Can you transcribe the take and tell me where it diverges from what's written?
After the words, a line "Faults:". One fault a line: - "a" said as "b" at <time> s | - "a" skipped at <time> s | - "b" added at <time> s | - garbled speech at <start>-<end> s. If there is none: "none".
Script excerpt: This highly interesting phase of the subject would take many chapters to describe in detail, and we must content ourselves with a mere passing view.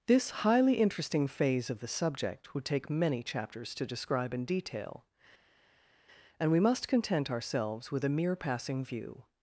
This highly interesting phase of the subject would take many chapters to describe in detail, and we must content ourselves with a mere passing view.
Faults:
none